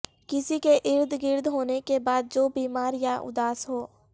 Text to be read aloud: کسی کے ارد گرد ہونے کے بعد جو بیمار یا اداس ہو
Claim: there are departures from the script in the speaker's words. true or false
false